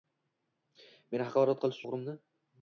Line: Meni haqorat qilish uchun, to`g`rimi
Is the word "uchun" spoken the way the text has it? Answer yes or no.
no